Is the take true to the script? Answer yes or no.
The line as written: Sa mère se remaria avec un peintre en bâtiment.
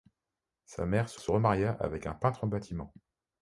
no